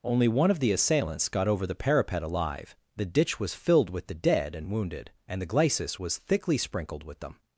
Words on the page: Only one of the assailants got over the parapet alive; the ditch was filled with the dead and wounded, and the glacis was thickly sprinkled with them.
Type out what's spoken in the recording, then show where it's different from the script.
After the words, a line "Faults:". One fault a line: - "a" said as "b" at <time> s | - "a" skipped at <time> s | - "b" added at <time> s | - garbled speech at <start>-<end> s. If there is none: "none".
Only one of the assailants got over the parapet alive; the ditch was filled with the dead and wounded, and the glacis was thickly sprinkled with them.
Faults:
none